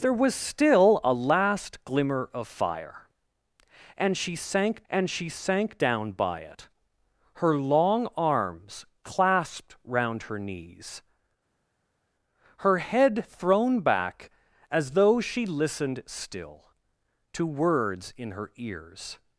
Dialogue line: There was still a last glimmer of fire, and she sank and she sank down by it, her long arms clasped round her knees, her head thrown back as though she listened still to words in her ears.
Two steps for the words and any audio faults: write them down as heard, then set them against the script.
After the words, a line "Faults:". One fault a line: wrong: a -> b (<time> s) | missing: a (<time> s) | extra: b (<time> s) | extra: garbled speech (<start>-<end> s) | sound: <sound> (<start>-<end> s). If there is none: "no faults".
There was still a last glimmer of fire, and she sank and she sank down by it, her long arms clasped round her knees, her head thrown back as though she listened still to words in her ears.
Faults:
no faults